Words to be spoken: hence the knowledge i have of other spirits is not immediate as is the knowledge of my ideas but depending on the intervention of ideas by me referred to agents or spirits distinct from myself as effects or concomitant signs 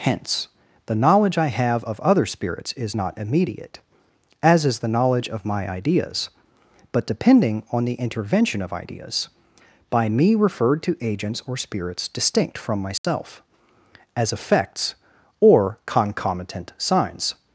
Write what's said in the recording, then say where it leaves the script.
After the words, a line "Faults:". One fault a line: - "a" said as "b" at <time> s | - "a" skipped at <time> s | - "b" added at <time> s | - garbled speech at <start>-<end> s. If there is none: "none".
hence the knowledge i have of other spirits is not immediate as is the knowledge of my ideas but depending on the intervention of ideas by me referred to agents or spirits distinct from myself as effects or concomitant signs
Faults:
none